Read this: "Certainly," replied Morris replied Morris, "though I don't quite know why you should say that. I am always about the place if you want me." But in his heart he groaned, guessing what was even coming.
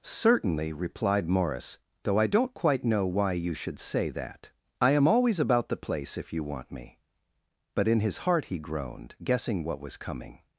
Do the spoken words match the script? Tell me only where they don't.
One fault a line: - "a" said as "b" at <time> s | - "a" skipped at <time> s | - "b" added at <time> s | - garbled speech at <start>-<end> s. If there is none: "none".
- "replied Morris" skipped at 1.8 s
- "even" skipped at 10.0 s